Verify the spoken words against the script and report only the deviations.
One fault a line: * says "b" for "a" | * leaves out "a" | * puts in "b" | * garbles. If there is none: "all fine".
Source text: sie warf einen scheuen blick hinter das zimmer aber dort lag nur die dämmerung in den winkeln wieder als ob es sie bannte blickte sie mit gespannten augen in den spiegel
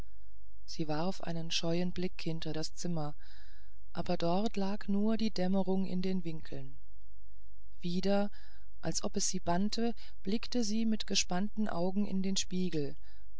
all fine